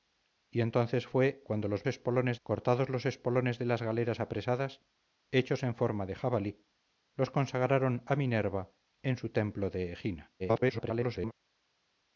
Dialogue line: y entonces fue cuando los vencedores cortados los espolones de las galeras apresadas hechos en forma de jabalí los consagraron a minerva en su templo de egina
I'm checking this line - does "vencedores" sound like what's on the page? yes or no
no